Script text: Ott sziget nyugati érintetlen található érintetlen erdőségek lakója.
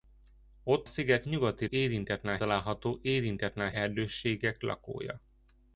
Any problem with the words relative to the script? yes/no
no